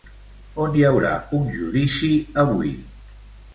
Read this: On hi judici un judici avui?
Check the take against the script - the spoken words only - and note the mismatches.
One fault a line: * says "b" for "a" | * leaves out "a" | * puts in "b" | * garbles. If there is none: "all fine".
* says "haurà" for "judici"